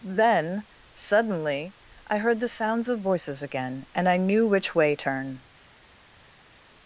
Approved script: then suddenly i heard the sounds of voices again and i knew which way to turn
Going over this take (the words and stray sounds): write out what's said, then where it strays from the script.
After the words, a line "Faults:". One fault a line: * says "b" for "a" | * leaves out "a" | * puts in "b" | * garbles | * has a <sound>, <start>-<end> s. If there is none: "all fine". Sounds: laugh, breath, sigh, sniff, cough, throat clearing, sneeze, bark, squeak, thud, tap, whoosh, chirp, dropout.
then suddenly i heard the sounds of voices again and i knew which way turn
Faults:
* leaves out "to"